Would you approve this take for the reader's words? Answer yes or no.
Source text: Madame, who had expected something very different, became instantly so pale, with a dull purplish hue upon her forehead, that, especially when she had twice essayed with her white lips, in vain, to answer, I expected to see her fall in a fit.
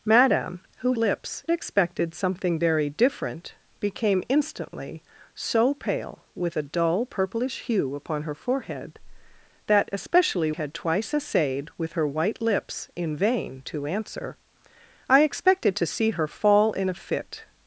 no